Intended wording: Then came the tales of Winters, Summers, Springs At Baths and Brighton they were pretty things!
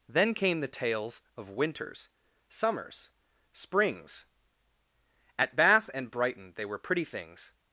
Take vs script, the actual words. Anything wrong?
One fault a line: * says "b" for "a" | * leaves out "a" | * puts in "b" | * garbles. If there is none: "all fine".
* says "Bath" for "Baths"